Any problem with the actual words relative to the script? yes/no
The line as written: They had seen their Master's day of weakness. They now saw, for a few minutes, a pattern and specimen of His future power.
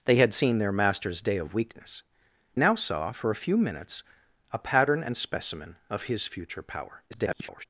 yes